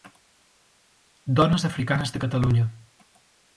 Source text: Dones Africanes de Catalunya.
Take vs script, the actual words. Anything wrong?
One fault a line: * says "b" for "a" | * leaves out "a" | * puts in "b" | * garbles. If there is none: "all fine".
all fine